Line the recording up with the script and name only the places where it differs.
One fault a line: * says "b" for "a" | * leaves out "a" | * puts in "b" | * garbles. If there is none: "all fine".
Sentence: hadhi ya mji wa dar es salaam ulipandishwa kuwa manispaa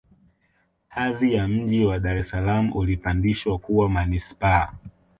all fine